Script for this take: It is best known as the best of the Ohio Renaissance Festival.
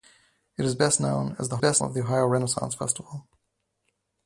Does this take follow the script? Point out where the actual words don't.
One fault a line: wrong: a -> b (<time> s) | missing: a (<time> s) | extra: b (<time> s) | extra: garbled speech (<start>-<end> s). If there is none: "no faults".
no faults